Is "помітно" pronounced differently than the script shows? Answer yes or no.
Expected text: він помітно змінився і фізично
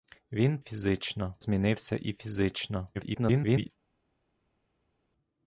yes